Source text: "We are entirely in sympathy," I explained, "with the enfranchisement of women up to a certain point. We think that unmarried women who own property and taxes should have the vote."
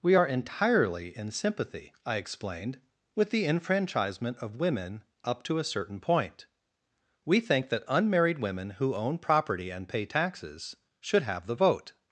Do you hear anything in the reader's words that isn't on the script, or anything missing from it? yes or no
yes